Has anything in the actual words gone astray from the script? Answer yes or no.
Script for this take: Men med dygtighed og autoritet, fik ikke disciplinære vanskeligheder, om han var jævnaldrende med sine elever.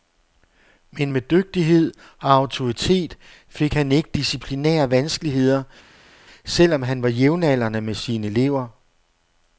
yes